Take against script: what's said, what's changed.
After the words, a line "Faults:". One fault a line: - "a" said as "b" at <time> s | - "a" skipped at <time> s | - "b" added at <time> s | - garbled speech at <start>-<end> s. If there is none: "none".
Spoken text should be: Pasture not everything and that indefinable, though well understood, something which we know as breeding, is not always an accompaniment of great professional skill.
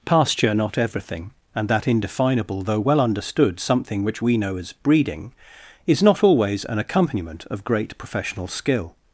Pasture not everything and that indefinable, though well understood, something which we know as breeding, is not always an accompaniment of great professional skill.
Faults:
none